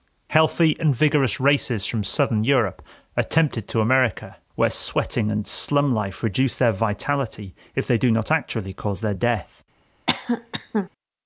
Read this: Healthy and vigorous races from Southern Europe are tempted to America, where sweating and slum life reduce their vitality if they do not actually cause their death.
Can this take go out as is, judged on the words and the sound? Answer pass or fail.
fail